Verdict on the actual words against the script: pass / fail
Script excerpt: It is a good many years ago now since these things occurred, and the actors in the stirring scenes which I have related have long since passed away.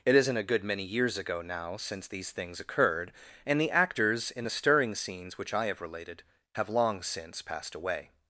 fail